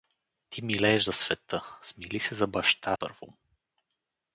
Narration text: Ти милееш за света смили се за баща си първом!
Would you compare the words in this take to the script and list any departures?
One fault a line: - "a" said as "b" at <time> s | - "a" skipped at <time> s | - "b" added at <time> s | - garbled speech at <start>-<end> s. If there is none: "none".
- "си" skipped at 3.0 s